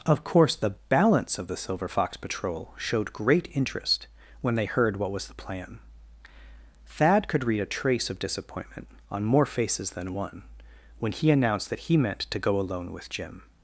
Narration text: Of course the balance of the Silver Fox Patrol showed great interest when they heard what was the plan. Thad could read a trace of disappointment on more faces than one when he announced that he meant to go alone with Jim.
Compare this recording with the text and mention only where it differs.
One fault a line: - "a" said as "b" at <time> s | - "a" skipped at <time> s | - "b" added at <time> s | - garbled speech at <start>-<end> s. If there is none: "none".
none